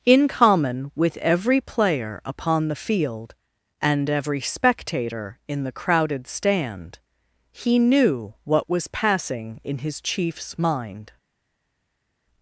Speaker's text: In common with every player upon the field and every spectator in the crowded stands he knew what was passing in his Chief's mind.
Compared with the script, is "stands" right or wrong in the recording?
wrong